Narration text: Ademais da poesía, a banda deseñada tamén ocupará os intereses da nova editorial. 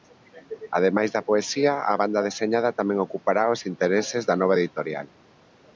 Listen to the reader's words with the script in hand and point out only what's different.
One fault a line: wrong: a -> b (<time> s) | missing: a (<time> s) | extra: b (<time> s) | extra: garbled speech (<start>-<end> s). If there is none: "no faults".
no faults